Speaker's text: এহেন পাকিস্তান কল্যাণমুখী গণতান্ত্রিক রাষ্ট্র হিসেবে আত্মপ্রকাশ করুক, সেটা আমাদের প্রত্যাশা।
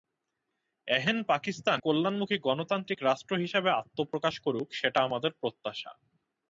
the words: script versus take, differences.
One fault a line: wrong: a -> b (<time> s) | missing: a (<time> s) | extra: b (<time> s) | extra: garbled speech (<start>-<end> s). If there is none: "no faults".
no faults